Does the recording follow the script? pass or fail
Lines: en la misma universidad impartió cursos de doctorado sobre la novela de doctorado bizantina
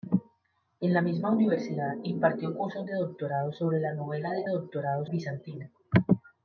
pass